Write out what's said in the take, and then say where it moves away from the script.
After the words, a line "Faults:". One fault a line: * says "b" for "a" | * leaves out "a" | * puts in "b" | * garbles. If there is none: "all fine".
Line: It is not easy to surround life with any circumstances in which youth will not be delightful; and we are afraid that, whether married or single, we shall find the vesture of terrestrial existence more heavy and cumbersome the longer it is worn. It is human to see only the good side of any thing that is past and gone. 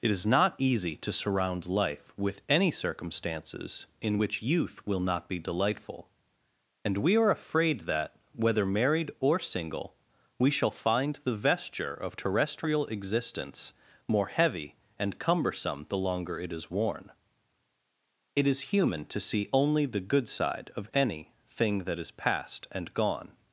It is not easy to surround life with any circumstances in which youth will not be delightful; and we are afraid that, whether married or single, we shall find the vesture of terrestrial existence more heavy and cumbersome the longer it is worn. It is human to see only the good side of any thing that is past and gone.
Faults:
all fine